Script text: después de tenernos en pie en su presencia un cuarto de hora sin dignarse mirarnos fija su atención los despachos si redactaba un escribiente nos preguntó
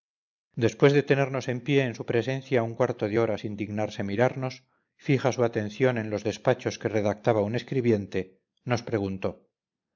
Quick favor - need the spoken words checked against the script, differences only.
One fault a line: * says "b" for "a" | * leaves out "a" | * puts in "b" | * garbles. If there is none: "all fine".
* puts in "en"
* says "que" for "si"